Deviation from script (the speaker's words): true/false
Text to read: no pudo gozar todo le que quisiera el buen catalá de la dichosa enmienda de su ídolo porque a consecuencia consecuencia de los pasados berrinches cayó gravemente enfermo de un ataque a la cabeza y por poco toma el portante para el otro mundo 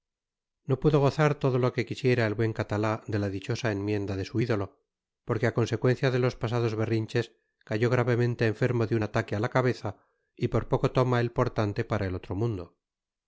true